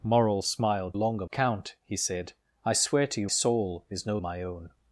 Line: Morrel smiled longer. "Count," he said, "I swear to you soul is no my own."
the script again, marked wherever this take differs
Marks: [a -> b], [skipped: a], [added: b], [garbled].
Morrel smiled longer. "Count," he said, "I swear to you soul is no my own."